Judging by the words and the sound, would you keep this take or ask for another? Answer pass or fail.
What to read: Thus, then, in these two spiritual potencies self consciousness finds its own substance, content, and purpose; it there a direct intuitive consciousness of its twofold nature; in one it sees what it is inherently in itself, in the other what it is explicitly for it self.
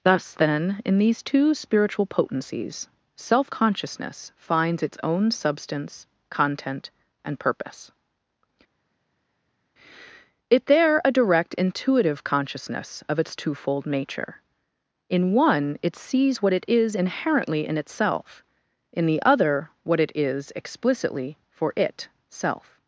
pass